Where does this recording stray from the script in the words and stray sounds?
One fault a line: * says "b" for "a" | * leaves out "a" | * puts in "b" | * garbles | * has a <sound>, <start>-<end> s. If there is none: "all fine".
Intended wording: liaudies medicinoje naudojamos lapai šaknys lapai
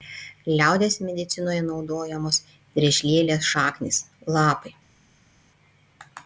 * says "driežlielės" for "lapai"